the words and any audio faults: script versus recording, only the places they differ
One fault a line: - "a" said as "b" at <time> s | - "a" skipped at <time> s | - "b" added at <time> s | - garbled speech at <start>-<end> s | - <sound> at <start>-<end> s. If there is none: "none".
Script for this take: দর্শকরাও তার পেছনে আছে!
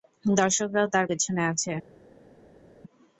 none